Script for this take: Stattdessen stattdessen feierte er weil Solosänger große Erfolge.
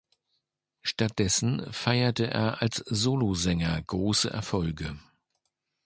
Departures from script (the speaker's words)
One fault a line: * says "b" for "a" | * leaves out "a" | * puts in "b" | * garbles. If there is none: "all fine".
* leaves out "stattdessen"
* says "als" for "weil"